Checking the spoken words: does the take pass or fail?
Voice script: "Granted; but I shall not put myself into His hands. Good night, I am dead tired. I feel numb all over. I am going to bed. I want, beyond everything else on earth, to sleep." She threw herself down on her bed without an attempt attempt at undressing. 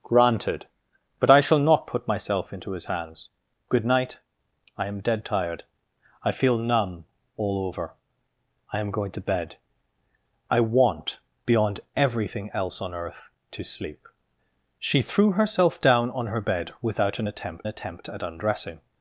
pass